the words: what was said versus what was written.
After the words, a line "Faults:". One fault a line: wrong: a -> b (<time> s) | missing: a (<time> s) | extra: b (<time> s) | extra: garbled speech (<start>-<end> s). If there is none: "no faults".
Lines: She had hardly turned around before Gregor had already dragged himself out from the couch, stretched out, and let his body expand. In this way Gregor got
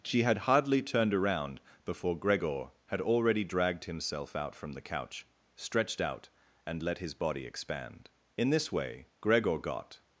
She had hardly turned around before Gregor had already dragged himself out from the couch, stretched out, and let his body expand. In this way Gregor got
Faults:
no faults